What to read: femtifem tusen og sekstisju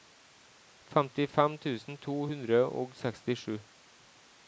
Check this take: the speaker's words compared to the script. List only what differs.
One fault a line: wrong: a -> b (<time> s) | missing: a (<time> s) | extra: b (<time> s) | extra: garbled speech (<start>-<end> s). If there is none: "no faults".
extra: to hundre (2.1 s)